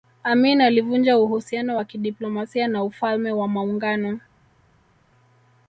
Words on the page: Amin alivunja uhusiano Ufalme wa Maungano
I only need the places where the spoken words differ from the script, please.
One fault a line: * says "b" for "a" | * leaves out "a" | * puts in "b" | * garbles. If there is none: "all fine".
* puts in "wa kidiplomasia na"